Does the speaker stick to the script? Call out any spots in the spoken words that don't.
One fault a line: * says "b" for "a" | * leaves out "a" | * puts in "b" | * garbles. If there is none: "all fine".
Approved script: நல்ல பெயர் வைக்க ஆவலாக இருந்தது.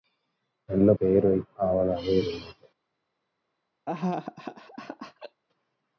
all fine